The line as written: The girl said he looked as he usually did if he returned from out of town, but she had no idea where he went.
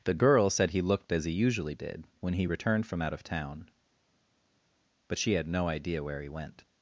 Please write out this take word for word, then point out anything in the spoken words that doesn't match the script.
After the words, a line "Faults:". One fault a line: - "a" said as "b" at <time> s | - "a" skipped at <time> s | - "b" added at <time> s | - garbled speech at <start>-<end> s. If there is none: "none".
The girl said he looked as he usually did when he returned from out of town, but she had no idea where he went.
Faults:
- "if" said as "when" at 2.2 s